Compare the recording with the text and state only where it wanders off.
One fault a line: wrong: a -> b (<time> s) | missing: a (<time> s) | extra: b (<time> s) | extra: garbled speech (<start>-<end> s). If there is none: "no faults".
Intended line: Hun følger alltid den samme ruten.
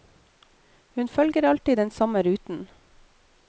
no faults